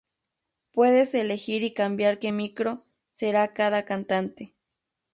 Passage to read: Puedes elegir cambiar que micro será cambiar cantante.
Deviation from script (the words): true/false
true